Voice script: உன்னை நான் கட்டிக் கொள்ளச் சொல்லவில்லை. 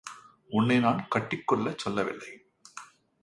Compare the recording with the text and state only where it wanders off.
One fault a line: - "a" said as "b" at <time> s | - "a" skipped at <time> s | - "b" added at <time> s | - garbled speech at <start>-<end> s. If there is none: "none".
none